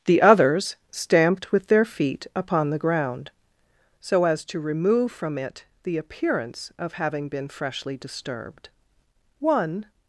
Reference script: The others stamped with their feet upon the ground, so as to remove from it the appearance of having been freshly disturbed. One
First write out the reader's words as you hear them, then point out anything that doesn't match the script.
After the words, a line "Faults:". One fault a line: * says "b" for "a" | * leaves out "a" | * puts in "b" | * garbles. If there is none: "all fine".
The others stamped with their feet upon the ground, so as to remove from it the appearance of having been freshly disturbed. One
Faults:
all fine